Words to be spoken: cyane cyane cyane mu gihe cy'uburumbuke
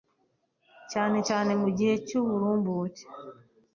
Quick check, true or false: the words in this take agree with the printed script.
false